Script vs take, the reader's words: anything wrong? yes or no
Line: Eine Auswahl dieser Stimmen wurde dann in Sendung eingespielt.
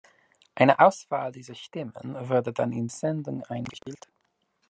no